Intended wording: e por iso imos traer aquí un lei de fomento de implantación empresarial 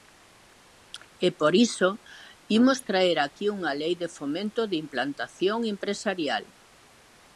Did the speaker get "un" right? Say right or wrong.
wrong